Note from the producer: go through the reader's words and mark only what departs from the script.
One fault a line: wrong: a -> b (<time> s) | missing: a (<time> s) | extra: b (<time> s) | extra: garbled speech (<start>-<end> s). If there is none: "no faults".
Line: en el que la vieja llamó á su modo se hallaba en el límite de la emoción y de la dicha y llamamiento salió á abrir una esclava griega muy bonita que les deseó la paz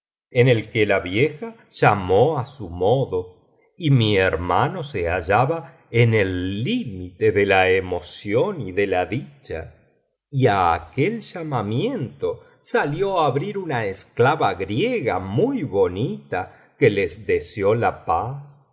extra: y mi hermano (3.8 s)
extra: á aquel (10.5 s)